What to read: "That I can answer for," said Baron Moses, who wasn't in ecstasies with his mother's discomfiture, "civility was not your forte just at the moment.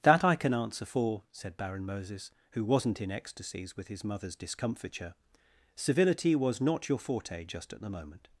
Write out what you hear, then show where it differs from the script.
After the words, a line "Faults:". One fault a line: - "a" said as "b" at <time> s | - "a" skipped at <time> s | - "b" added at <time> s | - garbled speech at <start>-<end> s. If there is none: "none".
"That I can answer for," said Baron Moses, who wasn't in ecstasies with his mother's discomfiture, "civility was not your forte just at the moment.
Faults:
none